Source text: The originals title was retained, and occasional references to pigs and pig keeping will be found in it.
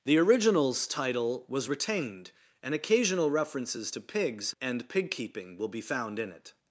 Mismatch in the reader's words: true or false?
false